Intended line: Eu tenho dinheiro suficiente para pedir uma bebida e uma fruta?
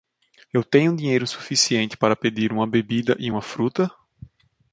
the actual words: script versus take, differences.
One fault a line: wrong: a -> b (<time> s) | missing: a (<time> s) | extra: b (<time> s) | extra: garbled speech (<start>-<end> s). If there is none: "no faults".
no faults